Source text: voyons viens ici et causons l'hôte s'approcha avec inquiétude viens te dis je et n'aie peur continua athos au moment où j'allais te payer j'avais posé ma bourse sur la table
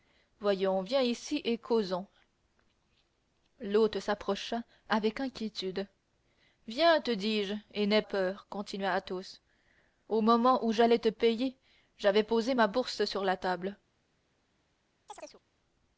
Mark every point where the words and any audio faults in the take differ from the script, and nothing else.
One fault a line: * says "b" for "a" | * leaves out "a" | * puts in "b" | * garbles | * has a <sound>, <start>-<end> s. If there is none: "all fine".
* has a chirp, 15.1-15.4 s